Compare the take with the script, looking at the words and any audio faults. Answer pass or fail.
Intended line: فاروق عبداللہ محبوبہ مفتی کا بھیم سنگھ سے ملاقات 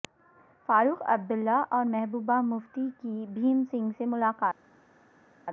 fail